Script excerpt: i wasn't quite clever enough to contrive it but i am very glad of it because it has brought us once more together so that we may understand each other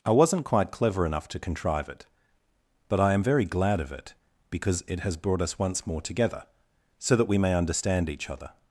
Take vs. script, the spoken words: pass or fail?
pass